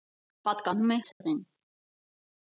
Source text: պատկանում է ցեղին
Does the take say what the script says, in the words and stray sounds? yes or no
no